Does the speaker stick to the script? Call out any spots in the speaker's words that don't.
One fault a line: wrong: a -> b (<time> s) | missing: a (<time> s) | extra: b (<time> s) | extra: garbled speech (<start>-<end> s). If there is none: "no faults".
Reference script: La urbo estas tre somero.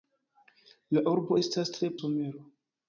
no faults